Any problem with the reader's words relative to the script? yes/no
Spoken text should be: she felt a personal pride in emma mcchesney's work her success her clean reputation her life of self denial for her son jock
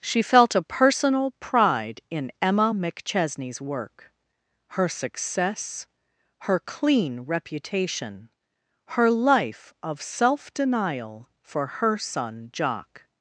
no